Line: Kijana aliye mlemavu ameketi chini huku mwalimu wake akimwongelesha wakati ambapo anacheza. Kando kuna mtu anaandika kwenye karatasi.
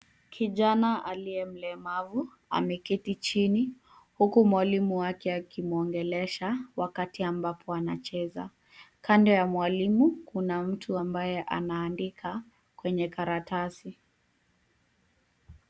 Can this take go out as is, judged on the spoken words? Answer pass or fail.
fail